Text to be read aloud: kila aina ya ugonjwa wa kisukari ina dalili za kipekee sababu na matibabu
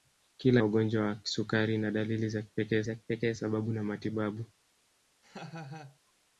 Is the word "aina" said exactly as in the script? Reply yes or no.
no